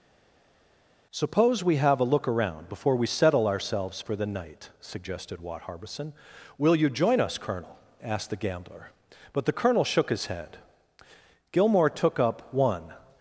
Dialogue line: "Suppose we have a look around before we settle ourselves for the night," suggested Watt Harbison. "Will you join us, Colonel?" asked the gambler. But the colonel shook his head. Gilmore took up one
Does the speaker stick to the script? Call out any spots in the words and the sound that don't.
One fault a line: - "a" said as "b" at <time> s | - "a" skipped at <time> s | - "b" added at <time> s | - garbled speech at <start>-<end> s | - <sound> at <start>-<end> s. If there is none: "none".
none